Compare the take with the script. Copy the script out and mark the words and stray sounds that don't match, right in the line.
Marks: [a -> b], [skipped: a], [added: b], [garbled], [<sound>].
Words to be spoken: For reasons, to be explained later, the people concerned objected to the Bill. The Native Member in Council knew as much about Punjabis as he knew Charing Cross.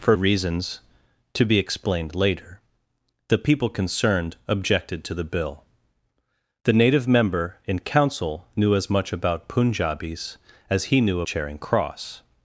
For reasons, to be explained later, the people concerned objected to the Bill. The Native Member in Council knew as much about Punjabis as he knew Charing Cross.